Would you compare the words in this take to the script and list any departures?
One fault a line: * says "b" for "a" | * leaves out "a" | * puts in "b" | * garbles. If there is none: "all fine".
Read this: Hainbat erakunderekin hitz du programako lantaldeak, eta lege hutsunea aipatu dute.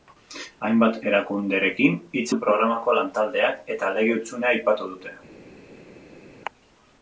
all fine